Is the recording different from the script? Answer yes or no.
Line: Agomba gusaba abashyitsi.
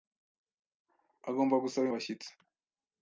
no